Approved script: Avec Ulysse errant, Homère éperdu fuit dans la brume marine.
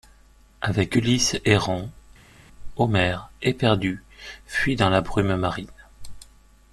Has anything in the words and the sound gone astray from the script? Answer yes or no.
no